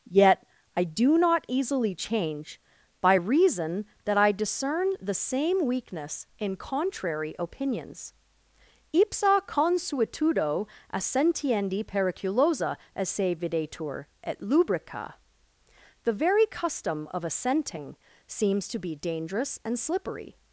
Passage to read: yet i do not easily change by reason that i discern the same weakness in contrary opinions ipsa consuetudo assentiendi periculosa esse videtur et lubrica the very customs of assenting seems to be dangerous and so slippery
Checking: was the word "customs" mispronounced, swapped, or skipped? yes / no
yes